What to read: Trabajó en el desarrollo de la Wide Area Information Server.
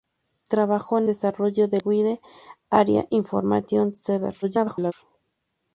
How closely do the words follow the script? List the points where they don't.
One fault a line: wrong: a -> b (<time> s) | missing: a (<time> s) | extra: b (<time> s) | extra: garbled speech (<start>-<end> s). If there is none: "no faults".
missing: el (1.1 s)
missing: la (1.8 s)
extra: garbled speech (4.4-4.9 s)